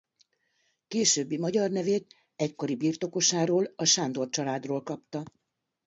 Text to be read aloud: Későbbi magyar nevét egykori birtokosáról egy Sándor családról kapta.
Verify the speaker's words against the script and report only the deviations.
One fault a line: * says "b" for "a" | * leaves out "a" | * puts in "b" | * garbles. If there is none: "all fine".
* says "a" for "egy"